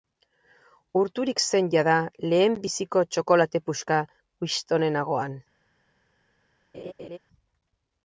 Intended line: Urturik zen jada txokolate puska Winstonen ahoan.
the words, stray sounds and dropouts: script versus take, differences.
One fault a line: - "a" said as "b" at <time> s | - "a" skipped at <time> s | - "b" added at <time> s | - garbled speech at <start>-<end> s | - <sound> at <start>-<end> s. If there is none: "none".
- "lehenbiziko" added at 2.3 s
- laugh at 6.7-7.2 s